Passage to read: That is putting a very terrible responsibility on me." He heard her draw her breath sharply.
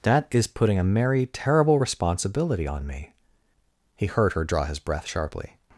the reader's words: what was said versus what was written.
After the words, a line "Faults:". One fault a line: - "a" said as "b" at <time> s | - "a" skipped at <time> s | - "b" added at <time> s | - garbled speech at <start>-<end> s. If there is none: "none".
That is putting a merry terrible responsibility on me." He heard her draw his breath sharply.
Faults:
- "very" said as "merry" at 0.8 s
- "her" said as "his" at 4.6 s